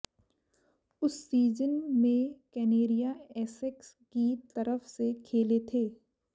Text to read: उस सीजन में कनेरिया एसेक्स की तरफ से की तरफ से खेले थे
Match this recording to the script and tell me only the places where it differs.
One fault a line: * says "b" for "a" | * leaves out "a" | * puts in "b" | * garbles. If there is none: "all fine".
* leaves out "की तरफ से"